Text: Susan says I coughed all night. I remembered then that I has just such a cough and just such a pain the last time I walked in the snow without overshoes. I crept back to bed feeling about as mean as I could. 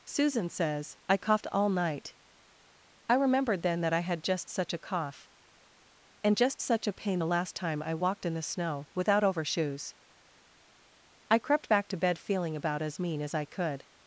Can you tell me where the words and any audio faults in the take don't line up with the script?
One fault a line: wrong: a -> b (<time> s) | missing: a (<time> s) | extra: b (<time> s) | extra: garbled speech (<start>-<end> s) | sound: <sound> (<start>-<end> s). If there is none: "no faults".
wrong: has -> had (4.0 s)